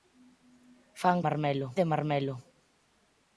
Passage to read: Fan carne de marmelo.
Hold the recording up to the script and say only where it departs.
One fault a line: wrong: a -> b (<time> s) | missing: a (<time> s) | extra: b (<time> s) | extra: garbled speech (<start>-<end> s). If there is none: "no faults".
wrong: carne -> marmelo (1.3 s)